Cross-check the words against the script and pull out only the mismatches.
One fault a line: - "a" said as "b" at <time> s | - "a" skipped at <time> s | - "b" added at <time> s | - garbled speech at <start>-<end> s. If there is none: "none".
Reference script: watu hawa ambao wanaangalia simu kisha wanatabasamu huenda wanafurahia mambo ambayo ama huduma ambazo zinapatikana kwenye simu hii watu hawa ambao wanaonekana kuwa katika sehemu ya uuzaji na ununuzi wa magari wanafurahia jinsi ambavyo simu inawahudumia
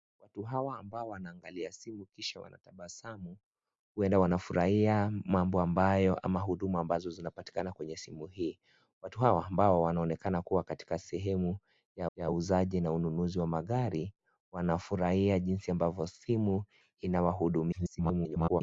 - "ya" added at 12.1 s
- garbled speech at 17.7-18.6 s